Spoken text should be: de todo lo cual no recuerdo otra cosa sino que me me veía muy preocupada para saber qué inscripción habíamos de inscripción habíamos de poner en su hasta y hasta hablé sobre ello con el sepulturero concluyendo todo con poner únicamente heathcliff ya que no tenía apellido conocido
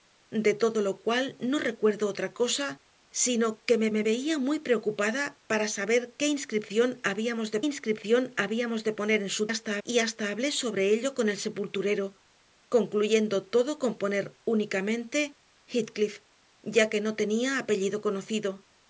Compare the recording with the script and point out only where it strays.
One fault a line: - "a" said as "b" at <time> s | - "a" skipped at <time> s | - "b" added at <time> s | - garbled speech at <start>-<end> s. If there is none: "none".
none